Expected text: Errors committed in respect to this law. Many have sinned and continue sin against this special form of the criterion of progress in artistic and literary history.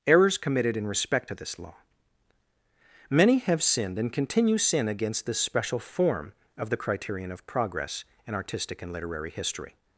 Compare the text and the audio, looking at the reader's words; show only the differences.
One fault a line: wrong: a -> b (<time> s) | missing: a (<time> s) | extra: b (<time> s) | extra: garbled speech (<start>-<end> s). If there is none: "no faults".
no faults